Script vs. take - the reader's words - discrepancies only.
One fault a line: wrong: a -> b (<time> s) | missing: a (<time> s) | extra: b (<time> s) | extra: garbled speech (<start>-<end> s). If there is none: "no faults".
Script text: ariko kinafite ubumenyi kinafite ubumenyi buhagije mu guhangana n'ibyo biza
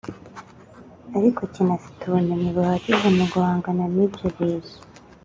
missing: kinafite ubumenyi (2.5 s)